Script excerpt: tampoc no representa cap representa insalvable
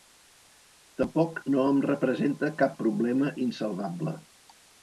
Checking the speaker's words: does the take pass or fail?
fail